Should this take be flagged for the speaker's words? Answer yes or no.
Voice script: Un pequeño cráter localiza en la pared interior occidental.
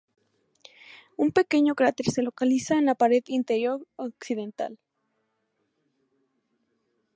yes